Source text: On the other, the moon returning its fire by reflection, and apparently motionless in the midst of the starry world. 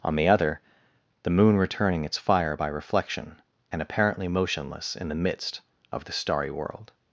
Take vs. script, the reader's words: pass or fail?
pass